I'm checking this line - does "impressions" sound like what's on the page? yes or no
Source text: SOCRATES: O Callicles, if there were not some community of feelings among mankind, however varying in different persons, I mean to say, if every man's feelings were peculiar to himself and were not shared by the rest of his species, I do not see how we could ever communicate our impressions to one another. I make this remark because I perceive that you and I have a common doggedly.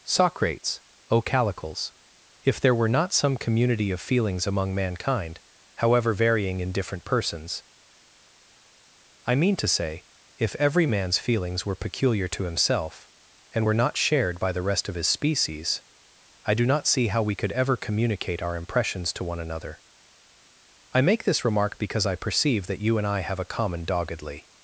yes